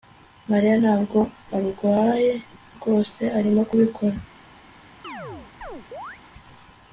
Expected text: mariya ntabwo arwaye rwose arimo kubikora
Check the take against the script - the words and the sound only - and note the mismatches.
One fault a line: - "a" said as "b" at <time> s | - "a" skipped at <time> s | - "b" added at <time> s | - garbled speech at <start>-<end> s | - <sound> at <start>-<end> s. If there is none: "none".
- chirp at 5.0-6.2 s